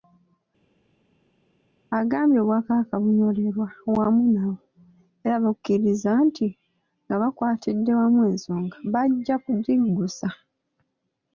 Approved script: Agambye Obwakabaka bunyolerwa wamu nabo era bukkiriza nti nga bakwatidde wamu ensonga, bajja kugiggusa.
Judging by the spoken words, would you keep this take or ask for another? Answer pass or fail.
pass